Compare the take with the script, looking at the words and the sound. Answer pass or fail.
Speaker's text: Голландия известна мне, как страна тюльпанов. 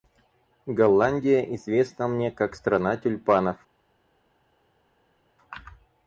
pass